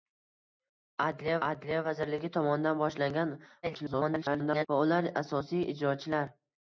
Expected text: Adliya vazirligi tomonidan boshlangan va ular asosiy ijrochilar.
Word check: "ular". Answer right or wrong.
right